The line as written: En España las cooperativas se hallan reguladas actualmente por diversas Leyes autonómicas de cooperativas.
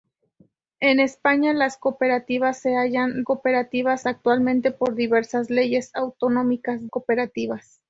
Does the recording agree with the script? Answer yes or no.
no